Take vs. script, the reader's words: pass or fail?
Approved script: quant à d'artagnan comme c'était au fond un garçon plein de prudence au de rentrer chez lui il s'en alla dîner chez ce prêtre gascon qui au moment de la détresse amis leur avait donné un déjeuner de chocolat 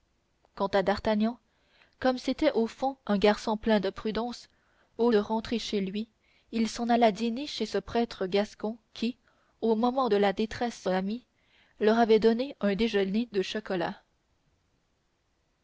pass